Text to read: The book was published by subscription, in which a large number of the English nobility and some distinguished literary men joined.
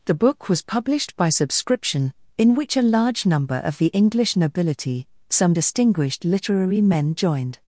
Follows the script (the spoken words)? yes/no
no